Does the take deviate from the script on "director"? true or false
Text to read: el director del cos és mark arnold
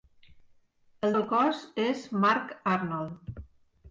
true